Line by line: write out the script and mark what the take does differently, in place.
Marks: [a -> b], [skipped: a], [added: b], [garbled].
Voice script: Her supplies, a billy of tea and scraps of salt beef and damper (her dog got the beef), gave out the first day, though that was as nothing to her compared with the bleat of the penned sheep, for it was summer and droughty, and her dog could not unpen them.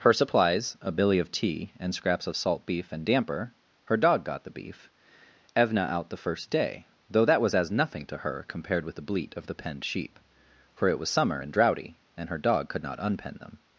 Her supplies, a billy of tea and scraps of salt beef and damper (her dog got the beef), [gave -> evna] out the first day, though that was as nothing to her compared with the bleat of the penned sheep, for it was summer and droughty, and her dog could not unpen them.